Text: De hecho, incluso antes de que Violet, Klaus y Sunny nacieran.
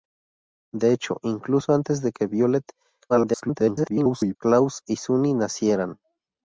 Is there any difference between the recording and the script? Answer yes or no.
yes